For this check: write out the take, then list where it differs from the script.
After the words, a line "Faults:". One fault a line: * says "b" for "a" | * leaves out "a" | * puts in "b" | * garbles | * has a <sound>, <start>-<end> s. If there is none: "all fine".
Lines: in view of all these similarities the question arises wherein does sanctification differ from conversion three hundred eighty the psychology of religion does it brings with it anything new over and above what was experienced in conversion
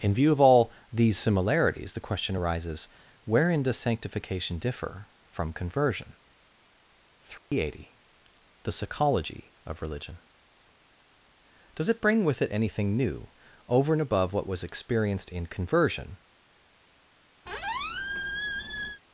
in view of all these similarities the question arises wherein does sanctification differ from conversion three hundred eighty the psychology of religion does it bring with it anything new over and above what was experienced in conversion
Faults:
* has a dropout, 7.4-7.5 s
* says "bring" for "brings"
* has a squeak, 17.5-19.0 s